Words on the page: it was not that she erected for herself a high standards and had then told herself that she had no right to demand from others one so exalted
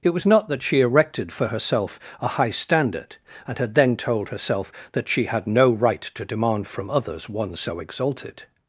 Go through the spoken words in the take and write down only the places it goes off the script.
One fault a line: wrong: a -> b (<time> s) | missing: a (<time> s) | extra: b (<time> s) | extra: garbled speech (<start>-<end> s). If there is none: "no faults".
wrong: standards -> standard (2.5 s)